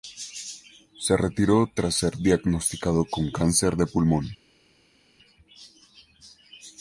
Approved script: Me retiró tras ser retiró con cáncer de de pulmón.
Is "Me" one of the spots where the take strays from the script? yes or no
yes